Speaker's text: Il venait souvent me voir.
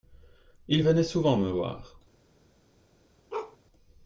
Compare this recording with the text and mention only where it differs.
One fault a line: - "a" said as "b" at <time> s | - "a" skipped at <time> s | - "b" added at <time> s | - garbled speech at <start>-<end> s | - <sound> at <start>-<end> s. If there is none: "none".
- bark at 3.3-3.6 s